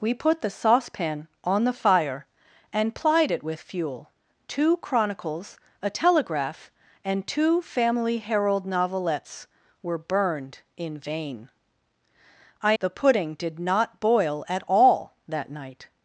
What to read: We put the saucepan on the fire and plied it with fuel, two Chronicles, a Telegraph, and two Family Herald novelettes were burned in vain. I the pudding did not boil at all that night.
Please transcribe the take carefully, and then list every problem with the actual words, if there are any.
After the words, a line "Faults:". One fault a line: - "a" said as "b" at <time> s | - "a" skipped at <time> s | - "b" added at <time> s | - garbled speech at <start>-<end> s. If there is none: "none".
We put the saucepan on the fire and plied it with fuel, two Chronicles, a Telegraph, and two Family Herald novelettes were burned in vain. I the pudding did not boil at all that night.
Faults:
none